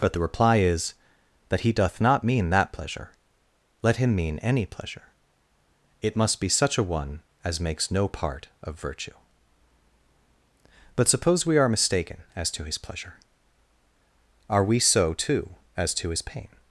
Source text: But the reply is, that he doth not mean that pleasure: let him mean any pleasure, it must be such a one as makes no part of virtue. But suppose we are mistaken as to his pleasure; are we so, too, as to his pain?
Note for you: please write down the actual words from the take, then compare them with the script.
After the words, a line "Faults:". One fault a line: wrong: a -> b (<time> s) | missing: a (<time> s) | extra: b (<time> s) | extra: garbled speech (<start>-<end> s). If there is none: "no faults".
But the reply is, that he doth not mean that pleasure: let him mean any pleasure, it must be such a one as makes no part of virtue. But suppose we are mistaken as to his pleasure; are we so, too, as to his pain?
Faults:
no faults